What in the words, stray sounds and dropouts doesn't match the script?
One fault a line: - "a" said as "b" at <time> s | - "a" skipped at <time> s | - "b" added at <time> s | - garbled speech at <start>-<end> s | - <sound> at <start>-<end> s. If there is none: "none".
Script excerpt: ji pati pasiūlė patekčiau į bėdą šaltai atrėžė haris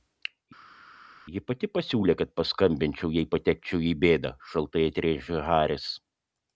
- "kad paskambinčiau jei" added at 2.2 s